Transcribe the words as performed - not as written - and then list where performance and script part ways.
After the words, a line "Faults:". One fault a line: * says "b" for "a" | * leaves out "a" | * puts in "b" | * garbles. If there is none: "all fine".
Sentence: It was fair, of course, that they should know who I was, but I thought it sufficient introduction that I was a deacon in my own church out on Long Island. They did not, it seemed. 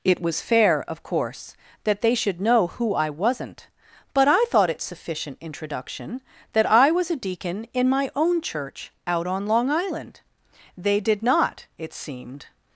It was fair, of course, that they should know who I wasn't, but I thought it sufficient introduction that I was a deacon in my own church out on Long Island. They did not, it seemed.
Faults:
* says "wasn't" for "was"